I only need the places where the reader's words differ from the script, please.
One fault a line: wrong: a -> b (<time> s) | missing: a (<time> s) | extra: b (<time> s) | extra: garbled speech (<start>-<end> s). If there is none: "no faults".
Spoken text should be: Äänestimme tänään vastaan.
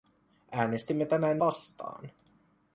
no faults